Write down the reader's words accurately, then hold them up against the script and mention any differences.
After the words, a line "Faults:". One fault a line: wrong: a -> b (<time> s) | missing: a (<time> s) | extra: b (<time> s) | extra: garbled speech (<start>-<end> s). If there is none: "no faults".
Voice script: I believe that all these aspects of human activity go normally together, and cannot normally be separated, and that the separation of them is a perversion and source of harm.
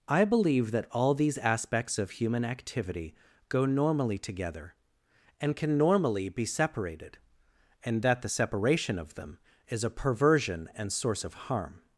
I believe that all these aspects of human activity go normally together, and can normally be separated, and that the separation of them is a perversion and source of harm.
Faults:
wrong: cannot -> can (5.5 s)